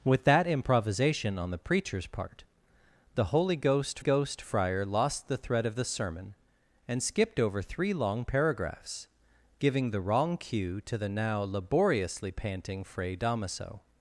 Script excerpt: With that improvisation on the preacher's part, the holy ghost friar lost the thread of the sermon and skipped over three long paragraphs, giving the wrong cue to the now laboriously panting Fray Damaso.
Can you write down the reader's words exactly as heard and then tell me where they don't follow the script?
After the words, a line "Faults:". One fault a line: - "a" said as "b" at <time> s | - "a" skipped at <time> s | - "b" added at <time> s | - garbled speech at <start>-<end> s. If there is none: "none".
With that improvisation on the preacher's part, the holy ghost ghost friar lost the thread of the sermon and skipped over three long paragraphs, giving the wrong cue to the now laboriously panting Fray Damaso.
Faults:
- "ghost" added at 4.0 s